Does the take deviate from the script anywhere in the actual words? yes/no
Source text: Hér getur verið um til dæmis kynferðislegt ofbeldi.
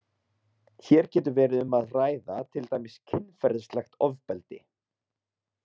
yes